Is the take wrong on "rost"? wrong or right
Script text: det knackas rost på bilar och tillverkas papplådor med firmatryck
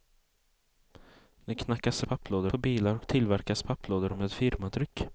wrong